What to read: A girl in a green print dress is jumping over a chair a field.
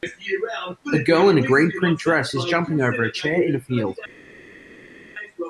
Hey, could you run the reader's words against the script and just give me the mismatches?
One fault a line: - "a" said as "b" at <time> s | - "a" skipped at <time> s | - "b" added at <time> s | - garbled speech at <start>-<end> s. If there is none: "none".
- "in" added at 3.4 s